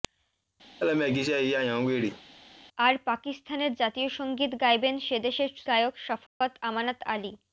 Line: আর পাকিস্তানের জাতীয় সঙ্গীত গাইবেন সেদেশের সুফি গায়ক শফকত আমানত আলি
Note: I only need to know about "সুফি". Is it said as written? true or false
false